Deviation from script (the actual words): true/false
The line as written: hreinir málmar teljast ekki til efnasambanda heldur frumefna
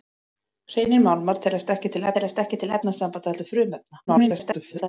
true